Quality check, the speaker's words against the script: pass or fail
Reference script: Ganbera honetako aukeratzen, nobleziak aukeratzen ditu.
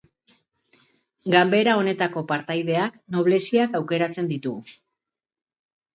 fail